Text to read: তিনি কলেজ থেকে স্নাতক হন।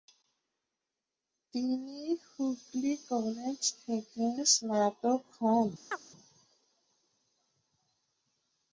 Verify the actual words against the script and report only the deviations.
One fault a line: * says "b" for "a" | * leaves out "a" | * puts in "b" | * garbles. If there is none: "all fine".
* puts in "হুগলি"